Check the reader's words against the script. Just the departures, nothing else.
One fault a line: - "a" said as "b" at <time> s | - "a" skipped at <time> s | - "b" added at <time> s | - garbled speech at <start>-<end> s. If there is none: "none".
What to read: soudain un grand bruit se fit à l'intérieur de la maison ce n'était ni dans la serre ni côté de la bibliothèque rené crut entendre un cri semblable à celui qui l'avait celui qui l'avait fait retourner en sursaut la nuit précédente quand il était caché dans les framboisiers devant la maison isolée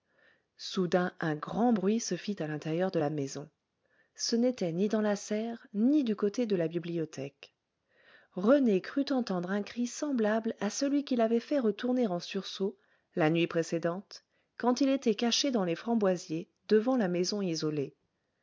- "du" added at 6.0 s
- "celui qui l'avait" skipped at 11.4 s